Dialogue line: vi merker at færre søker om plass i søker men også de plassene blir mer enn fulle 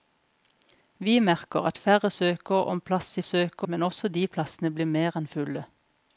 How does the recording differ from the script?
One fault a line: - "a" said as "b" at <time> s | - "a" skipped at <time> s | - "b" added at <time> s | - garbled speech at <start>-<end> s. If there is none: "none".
none